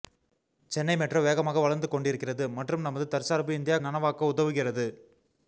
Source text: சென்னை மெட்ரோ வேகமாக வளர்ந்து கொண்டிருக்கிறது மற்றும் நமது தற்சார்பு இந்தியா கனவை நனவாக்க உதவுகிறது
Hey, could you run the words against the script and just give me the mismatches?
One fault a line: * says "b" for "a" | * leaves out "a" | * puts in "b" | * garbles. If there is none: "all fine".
* leaves out "கனவை"